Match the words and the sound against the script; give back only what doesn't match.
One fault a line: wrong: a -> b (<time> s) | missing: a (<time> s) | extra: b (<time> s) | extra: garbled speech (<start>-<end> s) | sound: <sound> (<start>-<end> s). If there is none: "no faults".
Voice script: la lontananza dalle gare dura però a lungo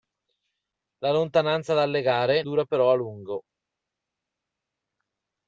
no faults